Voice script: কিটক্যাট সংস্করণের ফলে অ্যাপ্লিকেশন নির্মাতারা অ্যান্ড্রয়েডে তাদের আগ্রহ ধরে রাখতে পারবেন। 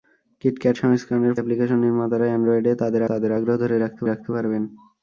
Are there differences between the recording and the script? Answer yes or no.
yes